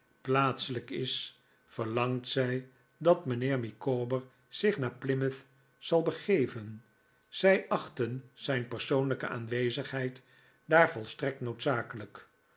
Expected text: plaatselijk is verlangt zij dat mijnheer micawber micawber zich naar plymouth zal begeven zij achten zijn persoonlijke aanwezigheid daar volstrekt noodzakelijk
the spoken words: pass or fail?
fail